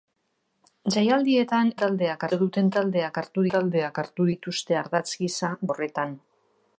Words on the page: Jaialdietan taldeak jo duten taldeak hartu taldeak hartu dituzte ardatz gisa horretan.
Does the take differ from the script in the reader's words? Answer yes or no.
no